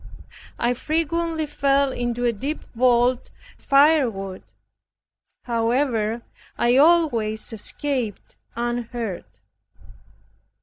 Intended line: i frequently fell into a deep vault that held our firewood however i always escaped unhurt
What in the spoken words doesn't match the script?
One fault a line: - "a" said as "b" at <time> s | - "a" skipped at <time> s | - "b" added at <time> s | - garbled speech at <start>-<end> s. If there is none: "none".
- "that held our" skipped at 3.3 s